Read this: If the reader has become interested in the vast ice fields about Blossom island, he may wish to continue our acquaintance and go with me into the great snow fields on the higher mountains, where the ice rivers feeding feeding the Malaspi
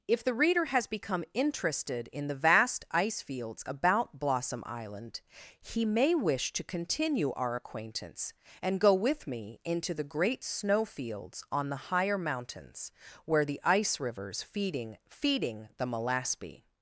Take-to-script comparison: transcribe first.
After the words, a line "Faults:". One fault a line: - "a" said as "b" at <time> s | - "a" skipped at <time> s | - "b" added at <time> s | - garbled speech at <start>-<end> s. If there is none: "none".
If the reader has become interested in the vast ice fields about Blossom island, he may wish to continue our acquaintance and go with me into the great snow fields on the higher mountains, where the ice rivers feeding feeding the Malaspi
Faults:
none